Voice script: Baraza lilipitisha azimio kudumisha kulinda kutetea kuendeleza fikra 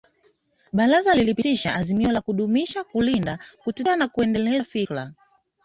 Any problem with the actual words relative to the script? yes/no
yes